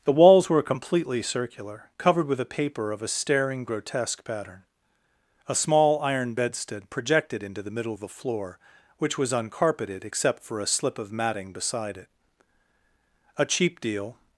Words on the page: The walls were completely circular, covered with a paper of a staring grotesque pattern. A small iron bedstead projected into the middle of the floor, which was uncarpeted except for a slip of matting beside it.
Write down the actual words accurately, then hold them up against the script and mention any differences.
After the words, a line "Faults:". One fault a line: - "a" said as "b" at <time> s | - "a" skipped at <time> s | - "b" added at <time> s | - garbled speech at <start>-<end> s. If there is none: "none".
The walls were completely circular, covered with a paper of a staring grotesque pattern. A small iron bedstead projected into the middle of the floor, which was uncarpeted except for a slip of matting beside it. A cheap deal
Faults:
- "A cheap deal" added at 13.4 s